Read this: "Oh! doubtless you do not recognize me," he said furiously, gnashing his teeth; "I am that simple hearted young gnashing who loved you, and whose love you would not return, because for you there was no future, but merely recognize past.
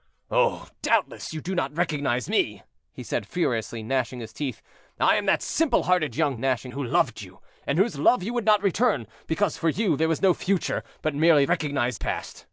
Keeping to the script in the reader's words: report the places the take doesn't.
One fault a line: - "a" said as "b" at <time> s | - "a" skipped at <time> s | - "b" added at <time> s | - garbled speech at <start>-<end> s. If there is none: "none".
none